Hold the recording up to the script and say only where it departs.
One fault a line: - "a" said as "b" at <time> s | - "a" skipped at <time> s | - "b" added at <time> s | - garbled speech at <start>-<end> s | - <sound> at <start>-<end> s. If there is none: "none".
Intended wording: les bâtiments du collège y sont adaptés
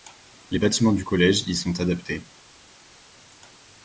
none